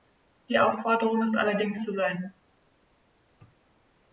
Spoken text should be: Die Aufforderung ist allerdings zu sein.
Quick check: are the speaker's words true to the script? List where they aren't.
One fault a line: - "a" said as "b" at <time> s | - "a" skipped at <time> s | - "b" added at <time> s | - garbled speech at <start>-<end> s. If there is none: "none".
none